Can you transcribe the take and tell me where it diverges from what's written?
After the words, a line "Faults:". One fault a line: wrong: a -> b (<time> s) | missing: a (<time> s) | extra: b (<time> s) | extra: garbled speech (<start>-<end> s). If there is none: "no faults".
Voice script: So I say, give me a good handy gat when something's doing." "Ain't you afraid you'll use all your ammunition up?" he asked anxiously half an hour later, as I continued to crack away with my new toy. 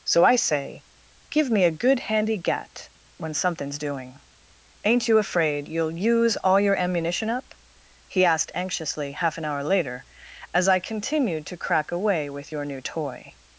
So I say, give me a good handy gat when something's doing." "Ain't you afraid you'll use all your ammunition up?" he asked anxiously half an hour later, as I continued to crack away with your new toy.
Faults:
wrong: my -> your (12.5 s)